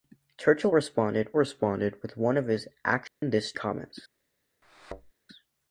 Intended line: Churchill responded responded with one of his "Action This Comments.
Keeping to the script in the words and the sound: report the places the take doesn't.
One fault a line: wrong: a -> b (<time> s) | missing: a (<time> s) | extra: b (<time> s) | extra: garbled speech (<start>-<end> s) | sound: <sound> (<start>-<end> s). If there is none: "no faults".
sound: dropout (3.1-3.2 s)
sound: thud (4.6-5.1 s)